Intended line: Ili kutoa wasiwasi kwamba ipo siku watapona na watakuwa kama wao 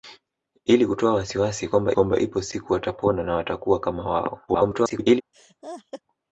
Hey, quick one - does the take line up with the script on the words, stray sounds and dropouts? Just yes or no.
no